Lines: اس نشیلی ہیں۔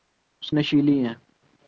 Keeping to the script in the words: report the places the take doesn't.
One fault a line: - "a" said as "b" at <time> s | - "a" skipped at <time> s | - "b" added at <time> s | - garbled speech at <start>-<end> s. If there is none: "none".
none